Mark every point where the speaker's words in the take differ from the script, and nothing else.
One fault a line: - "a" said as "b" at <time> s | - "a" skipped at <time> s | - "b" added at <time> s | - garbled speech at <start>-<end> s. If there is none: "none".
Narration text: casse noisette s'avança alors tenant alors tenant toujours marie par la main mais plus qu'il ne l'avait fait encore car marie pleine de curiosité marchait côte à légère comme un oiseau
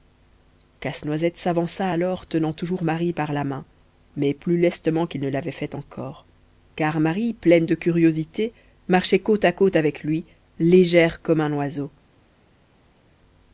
- "alors tenant" skipped at 2.5 s
- "lestement" added at 4.6 s
- "côte avec lui" added at 9.5 s